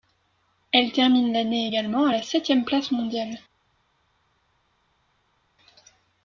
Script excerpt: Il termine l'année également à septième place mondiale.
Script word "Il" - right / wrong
wrong